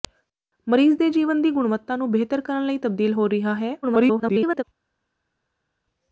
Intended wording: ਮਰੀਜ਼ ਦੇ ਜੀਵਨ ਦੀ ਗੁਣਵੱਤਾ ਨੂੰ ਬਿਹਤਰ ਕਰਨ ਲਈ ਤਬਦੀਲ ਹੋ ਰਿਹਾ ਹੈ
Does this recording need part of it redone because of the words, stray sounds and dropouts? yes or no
yes